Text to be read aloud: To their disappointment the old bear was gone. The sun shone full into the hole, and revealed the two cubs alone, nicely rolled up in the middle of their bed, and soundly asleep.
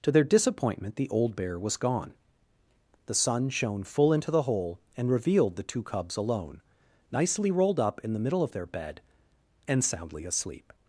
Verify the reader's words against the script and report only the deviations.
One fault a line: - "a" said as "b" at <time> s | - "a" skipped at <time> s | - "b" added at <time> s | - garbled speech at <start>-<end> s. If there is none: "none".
none